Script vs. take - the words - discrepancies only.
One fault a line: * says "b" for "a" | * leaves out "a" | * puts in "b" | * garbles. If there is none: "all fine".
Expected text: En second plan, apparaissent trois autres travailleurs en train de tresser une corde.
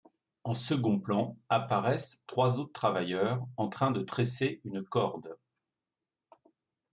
all fine